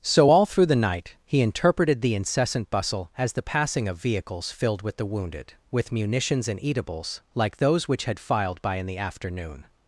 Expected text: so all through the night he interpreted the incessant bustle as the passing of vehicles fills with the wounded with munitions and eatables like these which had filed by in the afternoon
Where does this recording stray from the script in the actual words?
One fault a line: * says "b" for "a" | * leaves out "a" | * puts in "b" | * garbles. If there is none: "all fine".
* says "filled" for "fills"
* says "those" for "these"